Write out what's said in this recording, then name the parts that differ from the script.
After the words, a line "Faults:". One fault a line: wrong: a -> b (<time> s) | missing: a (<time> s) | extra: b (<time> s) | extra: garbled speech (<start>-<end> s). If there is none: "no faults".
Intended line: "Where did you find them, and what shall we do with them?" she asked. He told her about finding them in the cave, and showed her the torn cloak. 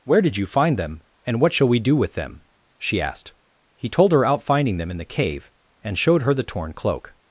"Where did you find them, and what shall we do with them?" she asked. He told her out finding them in the cave, and showed her the torn cloak.
Faults:
wrong: about -> out (4.2 s)